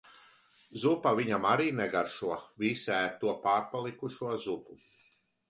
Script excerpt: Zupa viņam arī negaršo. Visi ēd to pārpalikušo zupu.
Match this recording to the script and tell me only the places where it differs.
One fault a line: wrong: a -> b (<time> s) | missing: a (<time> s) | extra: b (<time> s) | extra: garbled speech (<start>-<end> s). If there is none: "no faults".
no faults